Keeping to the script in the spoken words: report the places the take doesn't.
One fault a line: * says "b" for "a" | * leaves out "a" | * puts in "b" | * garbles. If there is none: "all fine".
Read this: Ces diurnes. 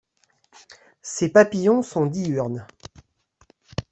* puts in "papillons sont"